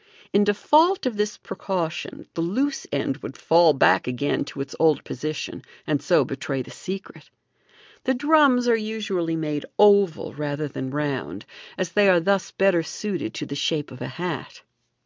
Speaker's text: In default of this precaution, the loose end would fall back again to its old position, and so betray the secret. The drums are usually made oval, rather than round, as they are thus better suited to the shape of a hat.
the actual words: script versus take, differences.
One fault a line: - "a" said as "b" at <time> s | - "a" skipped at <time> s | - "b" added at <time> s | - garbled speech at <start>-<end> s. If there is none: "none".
none